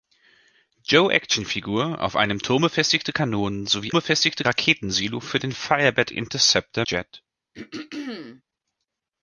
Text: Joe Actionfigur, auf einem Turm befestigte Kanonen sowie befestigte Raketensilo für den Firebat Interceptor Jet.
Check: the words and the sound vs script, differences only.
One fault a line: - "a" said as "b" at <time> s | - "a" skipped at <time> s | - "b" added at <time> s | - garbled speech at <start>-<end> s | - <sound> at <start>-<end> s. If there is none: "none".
- throat clearing at 7.5-8.4 s